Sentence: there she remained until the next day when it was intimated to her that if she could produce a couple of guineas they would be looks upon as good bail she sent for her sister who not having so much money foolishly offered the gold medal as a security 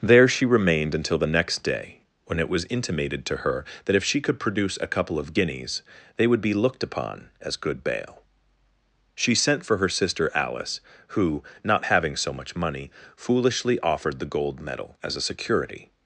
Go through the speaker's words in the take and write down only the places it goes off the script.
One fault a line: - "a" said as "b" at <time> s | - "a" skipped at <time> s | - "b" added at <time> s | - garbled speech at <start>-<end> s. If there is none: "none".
- "looks" said as "looked" at 6.5 s
- "alice" added at 10.3 s